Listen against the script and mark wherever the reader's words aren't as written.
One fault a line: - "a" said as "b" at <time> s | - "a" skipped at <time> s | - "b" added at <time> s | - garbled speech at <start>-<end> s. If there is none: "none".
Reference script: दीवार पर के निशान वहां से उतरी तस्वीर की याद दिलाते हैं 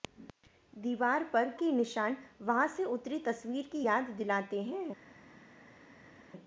none